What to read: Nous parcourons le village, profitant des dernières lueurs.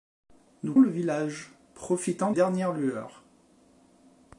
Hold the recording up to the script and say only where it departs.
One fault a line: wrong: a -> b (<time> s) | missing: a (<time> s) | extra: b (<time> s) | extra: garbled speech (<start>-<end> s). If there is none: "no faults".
missing: parcourons (0.7 s)
missing: des (2.3 s)